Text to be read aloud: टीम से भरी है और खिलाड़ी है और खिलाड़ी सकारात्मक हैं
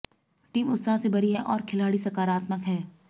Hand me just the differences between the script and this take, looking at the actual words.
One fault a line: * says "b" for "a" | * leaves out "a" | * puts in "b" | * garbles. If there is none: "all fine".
* puts in "उत्साह"
* leaves out "है और खिलाड़ी"